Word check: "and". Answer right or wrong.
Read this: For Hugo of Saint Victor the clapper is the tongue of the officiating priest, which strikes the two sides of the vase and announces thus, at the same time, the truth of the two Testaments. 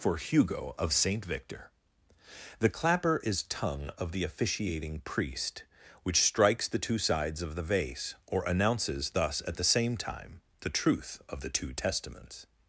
wrong